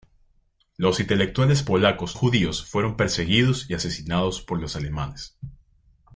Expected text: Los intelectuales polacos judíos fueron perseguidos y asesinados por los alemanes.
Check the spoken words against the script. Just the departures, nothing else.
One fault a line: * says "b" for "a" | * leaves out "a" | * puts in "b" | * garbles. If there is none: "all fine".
all fine